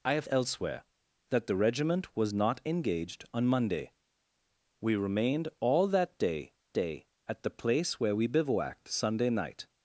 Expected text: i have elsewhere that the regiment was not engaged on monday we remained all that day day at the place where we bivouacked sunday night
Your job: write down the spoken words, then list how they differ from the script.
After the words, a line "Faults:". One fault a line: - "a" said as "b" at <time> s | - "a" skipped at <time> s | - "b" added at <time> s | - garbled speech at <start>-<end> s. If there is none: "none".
i have elsewhere that the regiment was not engaged on monday we remained all that day day at the place where we bivouacked sunday night
Faults:
none